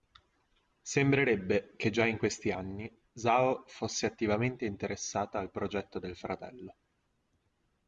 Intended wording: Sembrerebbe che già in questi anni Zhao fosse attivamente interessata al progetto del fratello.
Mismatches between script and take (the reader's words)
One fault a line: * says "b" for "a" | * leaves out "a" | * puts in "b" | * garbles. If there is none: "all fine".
all fine